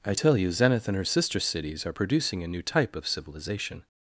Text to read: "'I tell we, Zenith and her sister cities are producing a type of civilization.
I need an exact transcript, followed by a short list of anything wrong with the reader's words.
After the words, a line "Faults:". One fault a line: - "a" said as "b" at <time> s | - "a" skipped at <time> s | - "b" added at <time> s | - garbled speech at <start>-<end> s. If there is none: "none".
"'I tell you, Zenith and her sister cities are producing a new type of civilization.
Faults:
- "we" said as "you" at 0.4 s
- "new" added at 2.5 s